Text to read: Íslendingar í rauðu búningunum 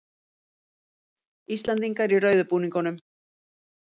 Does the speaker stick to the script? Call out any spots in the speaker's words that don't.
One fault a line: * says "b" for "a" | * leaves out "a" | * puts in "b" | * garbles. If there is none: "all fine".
all fine